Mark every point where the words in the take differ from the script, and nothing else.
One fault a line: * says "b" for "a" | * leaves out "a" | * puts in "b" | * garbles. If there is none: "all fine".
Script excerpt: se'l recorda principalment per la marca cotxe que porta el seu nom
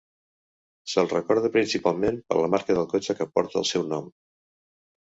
* puts in "del"